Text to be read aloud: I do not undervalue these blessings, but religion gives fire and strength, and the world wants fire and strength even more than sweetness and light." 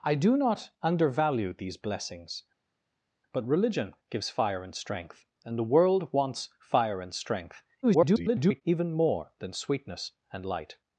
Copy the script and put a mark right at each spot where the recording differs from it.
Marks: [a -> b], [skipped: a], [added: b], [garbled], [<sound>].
I do not undervalue these blessings, but religion gives fire and strength, and the world wants fire and strength [garbled] even more than sweetness and light."